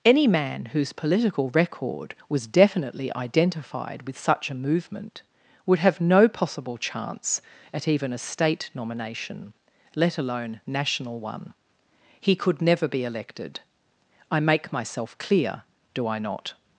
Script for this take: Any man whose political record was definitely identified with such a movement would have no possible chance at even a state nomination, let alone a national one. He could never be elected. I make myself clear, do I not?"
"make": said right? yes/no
yes